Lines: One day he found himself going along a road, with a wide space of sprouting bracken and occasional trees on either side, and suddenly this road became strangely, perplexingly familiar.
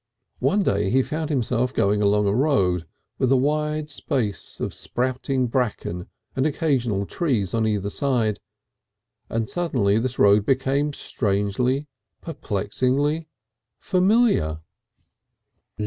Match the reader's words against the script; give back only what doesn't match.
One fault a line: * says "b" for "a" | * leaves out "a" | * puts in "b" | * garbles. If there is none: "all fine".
all fine